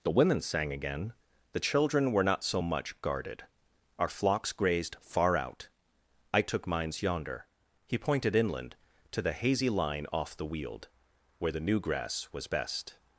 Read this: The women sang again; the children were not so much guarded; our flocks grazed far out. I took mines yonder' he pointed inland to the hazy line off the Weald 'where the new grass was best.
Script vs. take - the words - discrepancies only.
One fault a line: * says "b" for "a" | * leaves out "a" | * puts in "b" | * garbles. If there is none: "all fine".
all fine